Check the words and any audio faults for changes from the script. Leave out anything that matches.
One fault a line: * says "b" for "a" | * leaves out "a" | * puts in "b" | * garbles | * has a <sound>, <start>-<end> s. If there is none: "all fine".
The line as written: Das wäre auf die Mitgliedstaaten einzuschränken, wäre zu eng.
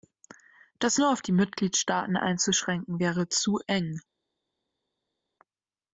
* says "nur" for "wäre"